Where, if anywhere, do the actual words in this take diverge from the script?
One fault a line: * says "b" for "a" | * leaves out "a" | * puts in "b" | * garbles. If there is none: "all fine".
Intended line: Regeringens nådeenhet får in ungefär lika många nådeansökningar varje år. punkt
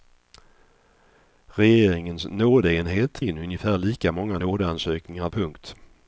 * leaves out "får"
* leaves out "varje år"